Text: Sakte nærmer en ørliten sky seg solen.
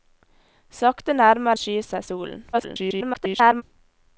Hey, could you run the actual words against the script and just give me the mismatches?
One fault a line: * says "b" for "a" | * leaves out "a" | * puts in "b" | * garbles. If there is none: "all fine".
* leaves out "en ørliten"
* garbles